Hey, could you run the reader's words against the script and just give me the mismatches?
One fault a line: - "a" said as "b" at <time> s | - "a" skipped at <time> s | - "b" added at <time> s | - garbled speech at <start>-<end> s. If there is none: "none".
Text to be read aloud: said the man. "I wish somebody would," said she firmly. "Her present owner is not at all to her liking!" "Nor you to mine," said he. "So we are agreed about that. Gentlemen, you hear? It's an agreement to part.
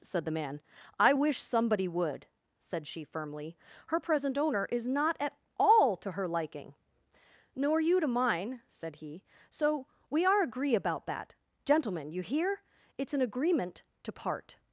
- "agreed" said as "agree" at 10.4 s